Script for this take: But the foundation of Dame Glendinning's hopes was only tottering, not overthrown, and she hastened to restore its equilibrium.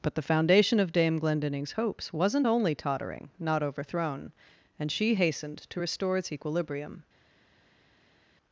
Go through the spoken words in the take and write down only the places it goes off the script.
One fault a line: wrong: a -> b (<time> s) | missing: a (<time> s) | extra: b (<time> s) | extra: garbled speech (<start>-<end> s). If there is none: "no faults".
wrong: was -> wasn't (2.1 s)